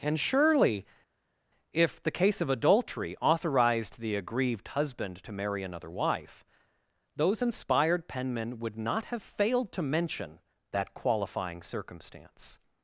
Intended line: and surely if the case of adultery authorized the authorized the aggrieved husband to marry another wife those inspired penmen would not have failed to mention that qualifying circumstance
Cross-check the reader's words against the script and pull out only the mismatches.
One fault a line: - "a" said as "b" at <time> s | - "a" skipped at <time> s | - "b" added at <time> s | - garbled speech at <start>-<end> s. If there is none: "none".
- "authorized the" skipped at 4.1 s